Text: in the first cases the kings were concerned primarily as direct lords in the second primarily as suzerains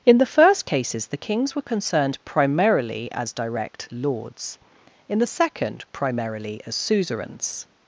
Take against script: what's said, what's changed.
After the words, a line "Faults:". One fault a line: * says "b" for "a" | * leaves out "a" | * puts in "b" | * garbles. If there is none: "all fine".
in the first cases the kings were concerned primarily as direct lords in the second primarily as suzerains
Faults:
all fine